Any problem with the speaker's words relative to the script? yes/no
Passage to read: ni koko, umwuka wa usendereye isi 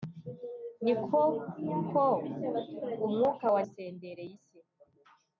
no